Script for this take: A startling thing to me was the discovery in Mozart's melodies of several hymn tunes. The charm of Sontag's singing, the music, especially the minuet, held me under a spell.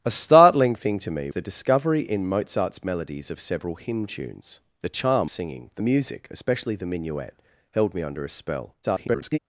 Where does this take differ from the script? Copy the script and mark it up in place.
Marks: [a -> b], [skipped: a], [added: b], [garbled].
A startling thing to me [skipped: was] the discovery in Mozart's melodies of several hymn tunes. The charm [skipped: of Sontag's] singing, the music, especially the minuet, held me under a spell. [garbled]